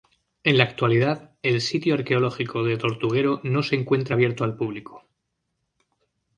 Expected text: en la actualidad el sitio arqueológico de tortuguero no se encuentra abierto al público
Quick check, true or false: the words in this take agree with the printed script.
true